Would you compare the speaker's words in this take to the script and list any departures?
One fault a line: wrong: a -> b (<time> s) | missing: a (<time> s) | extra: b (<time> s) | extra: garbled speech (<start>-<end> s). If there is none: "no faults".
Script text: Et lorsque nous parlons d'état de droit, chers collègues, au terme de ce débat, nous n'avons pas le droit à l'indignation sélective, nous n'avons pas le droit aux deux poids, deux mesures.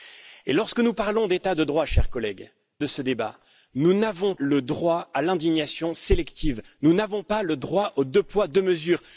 missing: au terme (2.5 s)
missing: pas (4.3 s)